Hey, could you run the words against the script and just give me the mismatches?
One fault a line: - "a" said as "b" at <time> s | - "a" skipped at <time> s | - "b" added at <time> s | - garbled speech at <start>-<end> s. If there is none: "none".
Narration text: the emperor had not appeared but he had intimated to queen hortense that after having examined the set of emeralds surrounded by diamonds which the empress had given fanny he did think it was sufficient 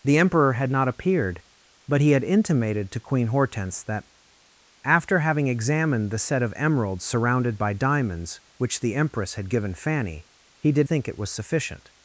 none